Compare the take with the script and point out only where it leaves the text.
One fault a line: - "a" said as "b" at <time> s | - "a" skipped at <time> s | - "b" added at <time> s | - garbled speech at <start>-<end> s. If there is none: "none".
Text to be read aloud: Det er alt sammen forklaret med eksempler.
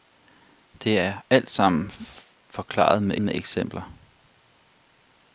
- "med" added at 3.2 s